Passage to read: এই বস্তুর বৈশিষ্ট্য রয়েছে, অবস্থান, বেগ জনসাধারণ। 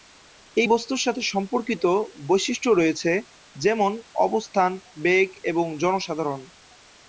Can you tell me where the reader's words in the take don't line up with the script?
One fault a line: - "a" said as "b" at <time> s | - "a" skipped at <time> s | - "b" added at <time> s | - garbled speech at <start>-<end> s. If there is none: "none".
- "সাথে সম্পর্কিত" added at 1.0 s
- "যেমন" added at 3.6 s
- "এবং" added at 5.4 s